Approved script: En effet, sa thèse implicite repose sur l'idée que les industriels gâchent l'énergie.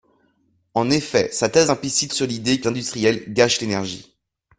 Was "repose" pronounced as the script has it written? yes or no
no